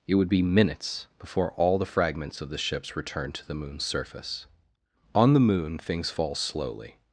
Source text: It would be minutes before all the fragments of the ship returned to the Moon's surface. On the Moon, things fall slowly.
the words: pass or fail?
fail